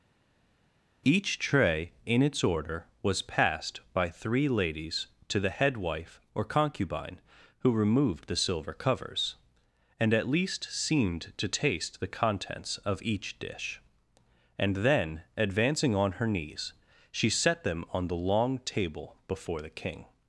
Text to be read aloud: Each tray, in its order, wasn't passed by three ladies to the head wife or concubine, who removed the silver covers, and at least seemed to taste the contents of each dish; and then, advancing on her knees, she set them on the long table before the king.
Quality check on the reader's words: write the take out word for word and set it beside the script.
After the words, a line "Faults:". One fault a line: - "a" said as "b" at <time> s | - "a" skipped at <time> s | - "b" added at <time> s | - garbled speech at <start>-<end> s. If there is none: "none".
Each tray, in its order, was passed by three ladies to the head wife or concubine, who removed the silver covers, and at least seemed to taste the contents of each dish; and then, advancing on her knees, she set them on the long table before the king.
Faults:
- "wasn't" said as "was" at 3.0 s